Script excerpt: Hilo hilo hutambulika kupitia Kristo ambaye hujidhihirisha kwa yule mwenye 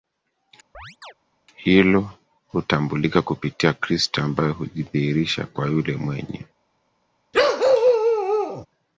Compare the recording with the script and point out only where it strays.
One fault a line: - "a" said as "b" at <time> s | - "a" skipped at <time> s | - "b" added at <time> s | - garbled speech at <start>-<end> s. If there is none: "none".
- "hilo" skipped at 2.1 s